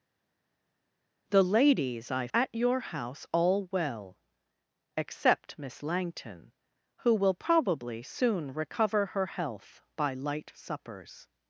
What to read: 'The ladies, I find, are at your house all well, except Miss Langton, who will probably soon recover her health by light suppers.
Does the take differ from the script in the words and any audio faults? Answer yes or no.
yes